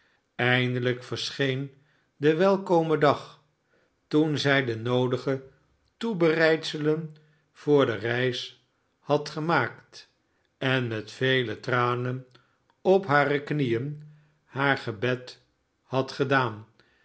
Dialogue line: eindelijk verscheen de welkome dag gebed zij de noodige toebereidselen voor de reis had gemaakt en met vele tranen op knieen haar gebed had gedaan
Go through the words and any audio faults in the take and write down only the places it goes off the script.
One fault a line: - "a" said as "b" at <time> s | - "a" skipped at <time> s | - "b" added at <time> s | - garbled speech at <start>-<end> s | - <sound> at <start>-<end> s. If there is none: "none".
- "gebed" said as "toen" at 4.1 s
- "hare" added at 13.1 s